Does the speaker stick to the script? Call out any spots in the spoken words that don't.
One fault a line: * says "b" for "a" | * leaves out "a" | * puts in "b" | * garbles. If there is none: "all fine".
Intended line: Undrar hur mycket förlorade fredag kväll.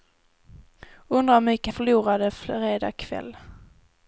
all fine